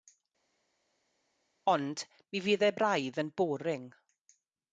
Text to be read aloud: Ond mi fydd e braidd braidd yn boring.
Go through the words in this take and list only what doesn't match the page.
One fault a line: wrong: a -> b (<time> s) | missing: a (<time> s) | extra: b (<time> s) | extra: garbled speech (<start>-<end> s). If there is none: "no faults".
missing: braidd (3.2 s)